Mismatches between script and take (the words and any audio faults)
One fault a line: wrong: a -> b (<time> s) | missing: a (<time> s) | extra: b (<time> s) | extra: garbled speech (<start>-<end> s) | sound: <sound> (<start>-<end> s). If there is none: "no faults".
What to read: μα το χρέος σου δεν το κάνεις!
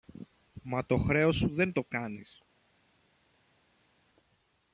no faults